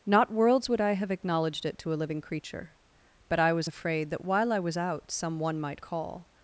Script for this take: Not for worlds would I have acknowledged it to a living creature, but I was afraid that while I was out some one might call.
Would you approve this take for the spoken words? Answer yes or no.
no